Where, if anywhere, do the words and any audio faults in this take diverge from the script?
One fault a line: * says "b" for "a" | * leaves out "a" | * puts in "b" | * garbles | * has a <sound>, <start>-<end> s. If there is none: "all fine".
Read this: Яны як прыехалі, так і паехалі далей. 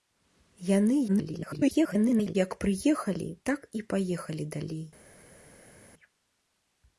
* garbles